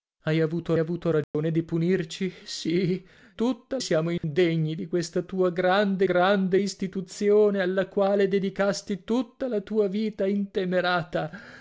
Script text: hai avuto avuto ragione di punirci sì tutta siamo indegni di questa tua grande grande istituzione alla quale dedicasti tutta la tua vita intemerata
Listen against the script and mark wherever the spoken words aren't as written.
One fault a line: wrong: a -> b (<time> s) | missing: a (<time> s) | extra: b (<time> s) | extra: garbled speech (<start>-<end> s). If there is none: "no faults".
no faults